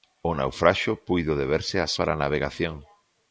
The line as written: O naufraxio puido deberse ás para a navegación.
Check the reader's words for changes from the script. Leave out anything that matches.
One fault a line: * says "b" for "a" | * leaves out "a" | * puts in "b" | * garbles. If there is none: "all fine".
all fine